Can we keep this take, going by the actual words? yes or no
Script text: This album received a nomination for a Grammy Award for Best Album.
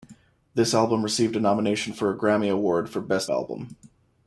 yes